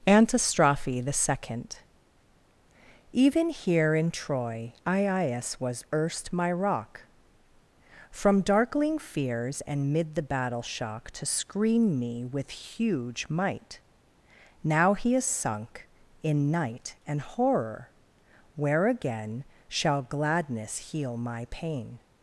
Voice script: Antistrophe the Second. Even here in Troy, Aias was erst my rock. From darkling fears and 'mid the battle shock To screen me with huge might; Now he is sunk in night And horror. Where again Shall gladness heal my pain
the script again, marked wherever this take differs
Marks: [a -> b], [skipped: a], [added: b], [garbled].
Antistrophe the Second. Even here in Troy, Aias was erst my rock. From darkling fears and 'mid the battle shock To screen me with huge might; Now he is sunk in night And horror. Where again Shall gladness heal my pain